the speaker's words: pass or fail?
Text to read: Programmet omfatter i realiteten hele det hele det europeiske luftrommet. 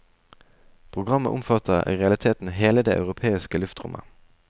fail